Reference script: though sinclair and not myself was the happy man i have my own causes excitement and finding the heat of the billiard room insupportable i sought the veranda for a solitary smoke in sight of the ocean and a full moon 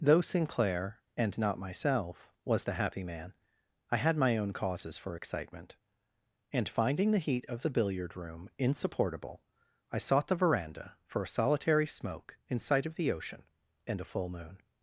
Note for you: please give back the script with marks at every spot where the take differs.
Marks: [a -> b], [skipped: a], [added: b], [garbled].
though sinclair and not myself was the happy man i [have -> had] my own causes [added: for] excitement and finding the heat of the billiard room insupportable i sought the veranda for a solitary smoke in sight of the ocean and a full moon